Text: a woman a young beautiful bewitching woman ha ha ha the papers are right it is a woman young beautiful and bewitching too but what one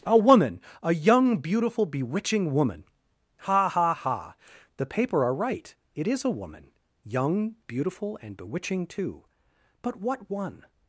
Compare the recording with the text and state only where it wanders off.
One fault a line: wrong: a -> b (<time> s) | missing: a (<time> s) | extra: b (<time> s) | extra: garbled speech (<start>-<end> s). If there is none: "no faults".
wrong: papers -> paper (4.9 s)